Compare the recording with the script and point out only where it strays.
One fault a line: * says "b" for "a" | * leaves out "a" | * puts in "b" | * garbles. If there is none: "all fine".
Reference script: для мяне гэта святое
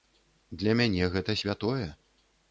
all fine